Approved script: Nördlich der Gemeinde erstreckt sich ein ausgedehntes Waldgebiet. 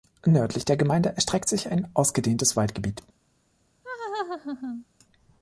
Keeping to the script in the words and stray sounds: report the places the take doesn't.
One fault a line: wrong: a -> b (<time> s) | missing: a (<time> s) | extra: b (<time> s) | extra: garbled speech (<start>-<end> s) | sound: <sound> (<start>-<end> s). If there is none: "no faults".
sound: laugh (3.8-4.8 s)